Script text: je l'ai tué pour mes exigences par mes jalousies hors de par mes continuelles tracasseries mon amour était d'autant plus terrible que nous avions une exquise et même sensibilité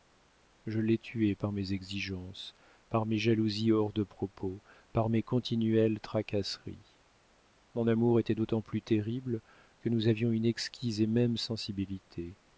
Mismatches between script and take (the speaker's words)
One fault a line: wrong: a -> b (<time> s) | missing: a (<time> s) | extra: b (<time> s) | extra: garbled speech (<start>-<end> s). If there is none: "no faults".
wrong: pour -> par (1.4 s)
extra: propos (4.0 s)